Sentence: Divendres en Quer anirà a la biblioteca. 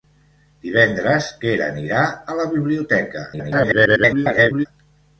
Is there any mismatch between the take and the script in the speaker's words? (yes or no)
yes